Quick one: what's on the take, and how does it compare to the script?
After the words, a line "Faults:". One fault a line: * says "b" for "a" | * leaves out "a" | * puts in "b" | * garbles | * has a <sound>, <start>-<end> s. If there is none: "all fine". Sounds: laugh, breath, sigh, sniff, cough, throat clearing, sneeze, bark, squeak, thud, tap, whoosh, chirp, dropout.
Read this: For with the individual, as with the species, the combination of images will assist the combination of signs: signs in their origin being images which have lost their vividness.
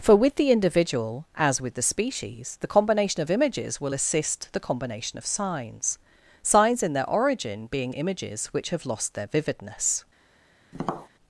For with the individual, as with the species, the combination of images will assist the combination of signs: signs in their origin being images which have lost their vividness.
Faults:
* has a tap, 10.7-11.1 s